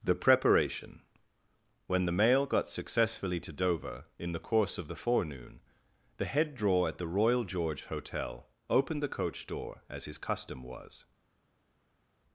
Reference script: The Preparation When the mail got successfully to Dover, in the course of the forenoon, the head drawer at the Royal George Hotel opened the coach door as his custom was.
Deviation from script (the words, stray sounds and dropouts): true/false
false